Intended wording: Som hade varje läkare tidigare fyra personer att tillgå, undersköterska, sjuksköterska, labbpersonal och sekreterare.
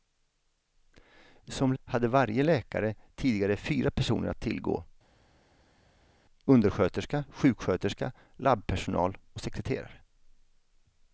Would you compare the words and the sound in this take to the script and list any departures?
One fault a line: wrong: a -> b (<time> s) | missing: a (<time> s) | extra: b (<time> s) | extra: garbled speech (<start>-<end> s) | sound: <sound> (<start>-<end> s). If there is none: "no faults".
no faults